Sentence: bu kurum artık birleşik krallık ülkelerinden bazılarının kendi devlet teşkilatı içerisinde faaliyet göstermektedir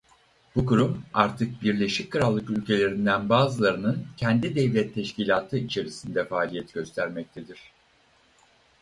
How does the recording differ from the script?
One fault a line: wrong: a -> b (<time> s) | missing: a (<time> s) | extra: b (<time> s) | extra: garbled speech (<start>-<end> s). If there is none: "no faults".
no faults